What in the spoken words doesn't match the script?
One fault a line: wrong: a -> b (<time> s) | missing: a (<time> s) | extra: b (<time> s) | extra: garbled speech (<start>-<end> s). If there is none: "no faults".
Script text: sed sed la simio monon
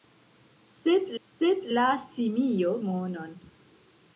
no faults